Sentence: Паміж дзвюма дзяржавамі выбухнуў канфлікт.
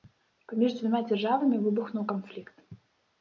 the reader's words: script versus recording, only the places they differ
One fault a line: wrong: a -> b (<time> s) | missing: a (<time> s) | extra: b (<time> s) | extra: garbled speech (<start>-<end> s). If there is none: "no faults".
no faults